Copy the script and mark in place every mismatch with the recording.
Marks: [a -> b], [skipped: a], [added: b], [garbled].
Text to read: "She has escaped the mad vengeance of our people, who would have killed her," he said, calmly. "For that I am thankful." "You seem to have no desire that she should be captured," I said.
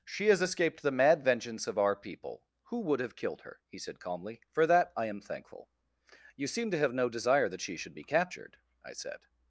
"She has escaped the mad vengeance of our people, who would have killed her," he said, calmly. "For that I am thankful." "You seem to have no desire that she should be captured," I said.